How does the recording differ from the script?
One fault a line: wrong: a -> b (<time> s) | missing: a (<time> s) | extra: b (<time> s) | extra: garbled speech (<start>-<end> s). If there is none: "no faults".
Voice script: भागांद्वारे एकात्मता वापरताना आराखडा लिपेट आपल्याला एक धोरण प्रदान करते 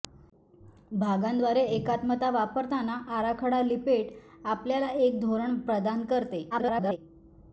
extra: garbled speech (6.5-7.0 s)